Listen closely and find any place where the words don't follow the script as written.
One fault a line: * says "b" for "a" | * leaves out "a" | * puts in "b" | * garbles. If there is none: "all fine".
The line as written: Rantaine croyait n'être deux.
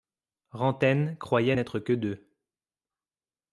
* puts in "que"